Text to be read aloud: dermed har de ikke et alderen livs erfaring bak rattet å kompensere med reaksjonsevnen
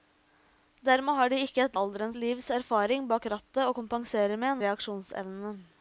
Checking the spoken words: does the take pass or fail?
pass